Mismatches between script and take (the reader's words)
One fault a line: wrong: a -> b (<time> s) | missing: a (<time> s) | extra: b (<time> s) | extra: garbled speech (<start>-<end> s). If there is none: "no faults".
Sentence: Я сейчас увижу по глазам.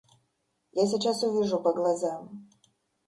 no faults